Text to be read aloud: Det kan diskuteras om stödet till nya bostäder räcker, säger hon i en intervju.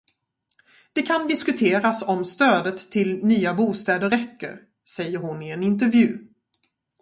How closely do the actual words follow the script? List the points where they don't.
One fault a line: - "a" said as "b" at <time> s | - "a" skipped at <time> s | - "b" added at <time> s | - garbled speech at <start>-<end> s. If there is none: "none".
none